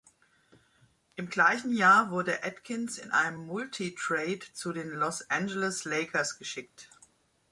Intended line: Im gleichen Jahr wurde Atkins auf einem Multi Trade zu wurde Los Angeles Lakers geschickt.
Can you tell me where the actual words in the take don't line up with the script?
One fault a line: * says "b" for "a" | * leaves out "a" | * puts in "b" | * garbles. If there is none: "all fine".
* says "in" for "auf"
* says "den" for "wurde"